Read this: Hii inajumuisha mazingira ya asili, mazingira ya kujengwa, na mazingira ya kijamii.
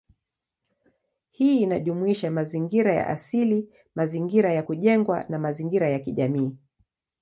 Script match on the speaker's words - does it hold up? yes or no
yes